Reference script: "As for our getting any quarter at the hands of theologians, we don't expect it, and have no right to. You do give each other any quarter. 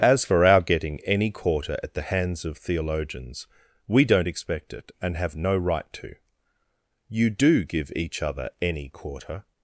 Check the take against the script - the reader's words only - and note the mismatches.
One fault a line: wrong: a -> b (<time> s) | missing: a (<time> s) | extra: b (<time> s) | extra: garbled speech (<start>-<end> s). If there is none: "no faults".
no faults